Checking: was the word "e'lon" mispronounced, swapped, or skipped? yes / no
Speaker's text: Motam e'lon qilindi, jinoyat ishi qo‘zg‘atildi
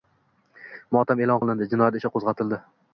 no